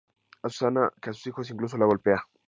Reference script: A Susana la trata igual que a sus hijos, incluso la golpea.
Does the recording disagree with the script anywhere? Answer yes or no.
yes